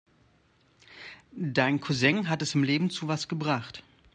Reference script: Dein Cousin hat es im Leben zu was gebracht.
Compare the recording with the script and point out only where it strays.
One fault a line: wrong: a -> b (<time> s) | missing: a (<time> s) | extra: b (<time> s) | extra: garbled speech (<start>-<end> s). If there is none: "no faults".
no faults